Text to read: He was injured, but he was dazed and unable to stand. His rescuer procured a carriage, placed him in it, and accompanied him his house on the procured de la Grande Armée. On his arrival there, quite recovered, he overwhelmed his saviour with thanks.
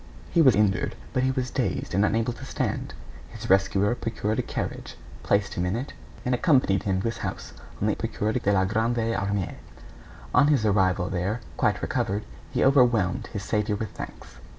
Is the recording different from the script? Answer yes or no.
no